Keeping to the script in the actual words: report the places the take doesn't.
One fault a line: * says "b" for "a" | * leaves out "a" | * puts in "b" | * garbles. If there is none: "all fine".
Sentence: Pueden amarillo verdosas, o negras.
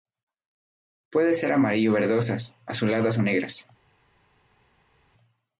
* puts in "ser"
* puts in "azuladas"